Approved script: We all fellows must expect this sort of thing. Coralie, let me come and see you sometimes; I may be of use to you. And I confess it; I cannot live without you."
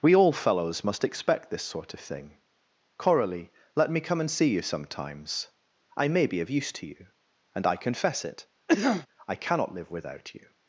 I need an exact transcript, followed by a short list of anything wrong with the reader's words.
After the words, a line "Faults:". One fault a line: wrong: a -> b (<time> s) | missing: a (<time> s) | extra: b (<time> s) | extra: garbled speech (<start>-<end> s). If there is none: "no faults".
We all fellows must expect this sort of thing. Coralie, let me come and see you sometimes; I may be of use to you. And I confess it; I cannot live without you."
Faults:
no faults